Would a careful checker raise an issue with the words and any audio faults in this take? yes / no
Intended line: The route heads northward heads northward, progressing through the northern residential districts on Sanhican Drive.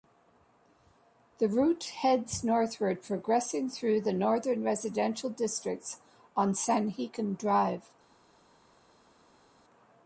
yes